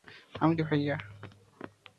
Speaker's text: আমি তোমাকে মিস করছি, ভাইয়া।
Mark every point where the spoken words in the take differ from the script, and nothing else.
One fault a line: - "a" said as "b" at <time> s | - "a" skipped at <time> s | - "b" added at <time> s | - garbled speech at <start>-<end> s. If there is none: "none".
- "তোমাকে মিস করছি" skipped at 0.5 s